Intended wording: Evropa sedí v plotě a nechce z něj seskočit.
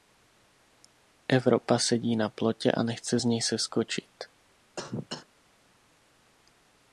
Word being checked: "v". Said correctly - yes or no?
no